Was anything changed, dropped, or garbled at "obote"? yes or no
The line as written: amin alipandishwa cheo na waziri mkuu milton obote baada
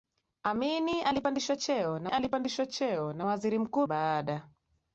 yes